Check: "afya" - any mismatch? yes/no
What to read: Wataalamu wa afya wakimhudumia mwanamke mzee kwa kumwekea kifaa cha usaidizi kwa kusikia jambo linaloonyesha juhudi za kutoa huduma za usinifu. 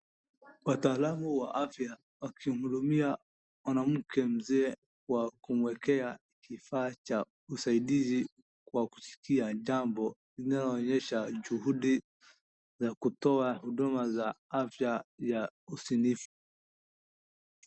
no